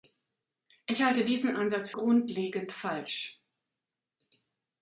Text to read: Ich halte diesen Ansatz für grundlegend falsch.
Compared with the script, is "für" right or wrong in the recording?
wrong